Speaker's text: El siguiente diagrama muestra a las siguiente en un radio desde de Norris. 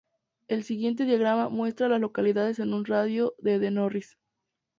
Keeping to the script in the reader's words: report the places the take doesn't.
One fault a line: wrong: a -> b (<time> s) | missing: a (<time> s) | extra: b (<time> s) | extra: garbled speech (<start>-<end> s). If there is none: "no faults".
wrong: siguiente -> localidades (2.0 s)
wrong: desde -> de (3.4 s)